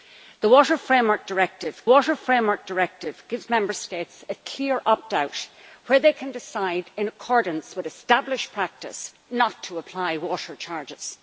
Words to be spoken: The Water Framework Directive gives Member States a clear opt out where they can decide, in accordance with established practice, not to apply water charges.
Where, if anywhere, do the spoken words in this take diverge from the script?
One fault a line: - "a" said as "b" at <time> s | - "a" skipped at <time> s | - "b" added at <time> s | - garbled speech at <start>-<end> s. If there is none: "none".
- "Water Framework Directive" added at 1.9 s